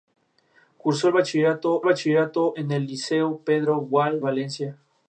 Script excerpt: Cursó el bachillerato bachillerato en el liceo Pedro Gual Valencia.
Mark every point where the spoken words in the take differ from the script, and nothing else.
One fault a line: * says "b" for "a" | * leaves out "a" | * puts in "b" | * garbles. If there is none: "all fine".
all fine